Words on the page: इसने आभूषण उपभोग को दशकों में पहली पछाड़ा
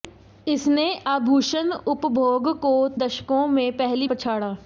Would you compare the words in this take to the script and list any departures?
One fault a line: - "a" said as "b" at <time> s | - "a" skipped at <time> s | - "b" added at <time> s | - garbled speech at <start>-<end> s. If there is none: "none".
none